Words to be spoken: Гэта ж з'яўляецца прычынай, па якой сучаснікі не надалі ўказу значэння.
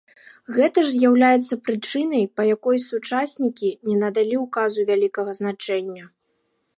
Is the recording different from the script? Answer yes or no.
yes